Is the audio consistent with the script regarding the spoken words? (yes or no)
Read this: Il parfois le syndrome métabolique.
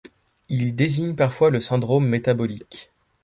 no